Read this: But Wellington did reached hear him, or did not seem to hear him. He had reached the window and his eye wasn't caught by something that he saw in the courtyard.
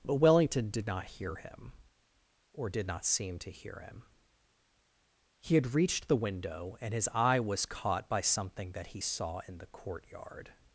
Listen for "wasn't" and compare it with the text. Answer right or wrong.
wrong